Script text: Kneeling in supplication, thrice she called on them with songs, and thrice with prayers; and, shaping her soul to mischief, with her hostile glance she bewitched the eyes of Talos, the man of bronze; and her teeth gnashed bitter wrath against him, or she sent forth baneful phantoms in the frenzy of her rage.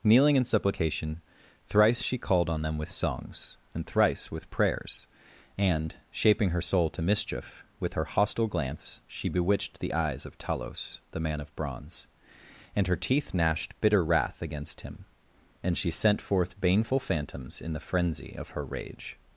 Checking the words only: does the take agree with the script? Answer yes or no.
no